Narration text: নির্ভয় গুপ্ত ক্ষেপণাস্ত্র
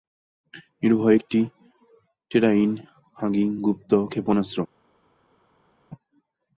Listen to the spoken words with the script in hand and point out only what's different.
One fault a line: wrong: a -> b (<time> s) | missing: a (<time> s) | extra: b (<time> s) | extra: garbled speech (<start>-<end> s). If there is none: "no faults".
extra: একটি টেরাইন হাগিং (1.1 s)